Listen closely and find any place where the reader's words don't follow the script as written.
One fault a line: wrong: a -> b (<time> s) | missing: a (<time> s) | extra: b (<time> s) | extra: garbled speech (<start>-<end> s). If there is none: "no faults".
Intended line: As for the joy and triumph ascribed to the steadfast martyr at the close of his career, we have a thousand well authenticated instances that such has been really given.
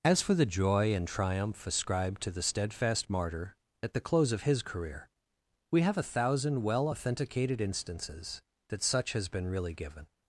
no faults